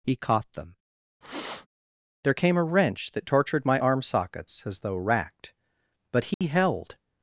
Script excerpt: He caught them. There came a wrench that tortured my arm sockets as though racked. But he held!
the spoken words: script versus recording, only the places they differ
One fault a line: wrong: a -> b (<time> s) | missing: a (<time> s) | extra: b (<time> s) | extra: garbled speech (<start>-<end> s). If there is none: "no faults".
no faults